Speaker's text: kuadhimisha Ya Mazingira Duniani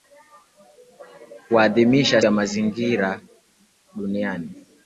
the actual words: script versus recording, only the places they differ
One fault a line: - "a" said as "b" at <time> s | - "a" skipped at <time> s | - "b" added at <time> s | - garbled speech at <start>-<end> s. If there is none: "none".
none